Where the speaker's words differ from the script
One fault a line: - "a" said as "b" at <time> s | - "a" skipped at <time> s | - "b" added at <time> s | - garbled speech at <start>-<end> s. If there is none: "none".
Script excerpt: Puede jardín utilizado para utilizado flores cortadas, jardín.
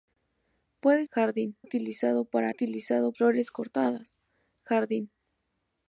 none